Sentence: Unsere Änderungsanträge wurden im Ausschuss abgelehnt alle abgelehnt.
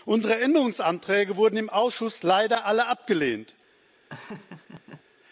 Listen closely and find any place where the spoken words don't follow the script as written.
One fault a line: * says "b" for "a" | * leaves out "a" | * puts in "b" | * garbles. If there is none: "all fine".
* says "leider" for "abgelehnt"